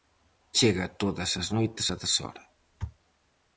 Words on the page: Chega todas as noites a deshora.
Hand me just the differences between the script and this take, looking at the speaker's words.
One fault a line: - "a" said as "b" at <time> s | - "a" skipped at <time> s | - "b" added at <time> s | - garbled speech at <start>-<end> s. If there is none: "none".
none